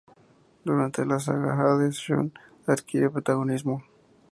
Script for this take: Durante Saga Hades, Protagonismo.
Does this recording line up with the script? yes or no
no